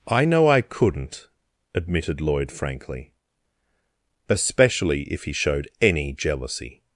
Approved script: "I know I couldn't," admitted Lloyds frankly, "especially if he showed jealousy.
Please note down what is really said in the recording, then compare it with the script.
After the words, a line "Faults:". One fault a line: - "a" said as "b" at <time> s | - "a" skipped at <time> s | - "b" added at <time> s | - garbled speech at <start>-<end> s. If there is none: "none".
"I know I couldn't," admitted Lloyd frankly, "especially if he showed any jealousy.
Faults:
- "Lloyds" said as "Lloyd" at 2.2 s
- "any" added at 5.8 s